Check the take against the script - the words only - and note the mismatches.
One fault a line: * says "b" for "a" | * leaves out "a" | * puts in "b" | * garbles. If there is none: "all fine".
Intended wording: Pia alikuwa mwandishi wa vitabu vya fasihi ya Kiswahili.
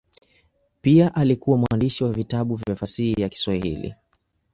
all fine